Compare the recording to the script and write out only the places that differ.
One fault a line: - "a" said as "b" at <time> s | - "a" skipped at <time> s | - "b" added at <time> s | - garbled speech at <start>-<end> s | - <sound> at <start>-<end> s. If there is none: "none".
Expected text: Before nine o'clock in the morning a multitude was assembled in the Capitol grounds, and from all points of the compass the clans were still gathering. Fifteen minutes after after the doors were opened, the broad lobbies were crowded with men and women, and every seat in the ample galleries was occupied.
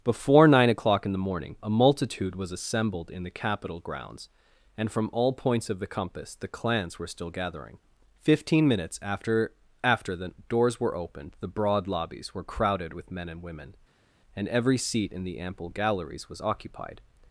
none